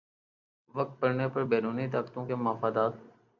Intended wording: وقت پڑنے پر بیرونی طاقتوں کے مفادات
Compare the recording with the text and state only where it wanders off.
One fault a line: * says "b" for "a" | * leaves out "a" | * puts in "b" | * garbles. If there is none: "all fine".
all fine